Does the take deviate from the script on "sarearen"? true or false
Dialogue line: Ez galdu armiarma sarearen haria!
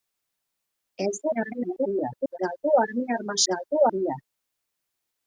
true